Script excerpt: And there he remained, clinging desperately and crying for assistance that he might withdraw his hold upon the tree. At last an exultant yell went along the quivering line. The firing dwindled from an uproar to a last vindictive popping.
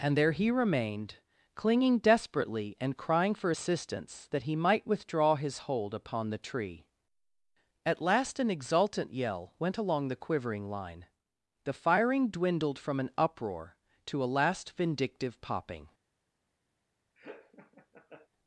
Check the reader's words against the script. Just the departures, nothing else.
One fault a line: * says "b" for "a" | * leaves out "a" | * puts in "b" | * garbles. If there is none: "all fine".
all fine